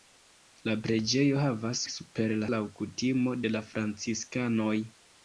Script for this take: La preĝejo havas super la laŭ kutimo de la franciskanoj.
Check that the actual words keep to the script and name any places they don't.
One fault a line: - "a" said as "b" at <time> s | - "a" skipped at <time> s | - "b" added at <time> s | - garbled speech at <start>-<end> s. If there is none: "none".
none